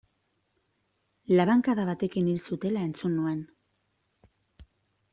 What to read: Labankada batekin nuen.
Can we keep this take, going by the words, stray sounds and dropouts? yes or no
no